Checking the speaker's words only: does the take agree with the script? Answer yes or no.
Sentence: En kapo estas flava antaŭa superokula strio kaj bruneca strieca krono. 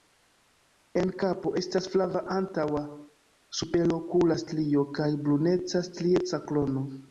yes